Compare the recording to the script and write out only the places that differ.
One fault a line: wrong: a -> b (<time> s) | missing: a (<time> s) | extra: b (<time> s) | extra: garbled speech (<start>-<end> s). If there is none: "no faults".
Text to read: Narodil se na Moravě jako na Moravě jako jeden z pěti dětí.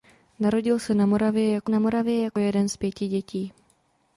no faults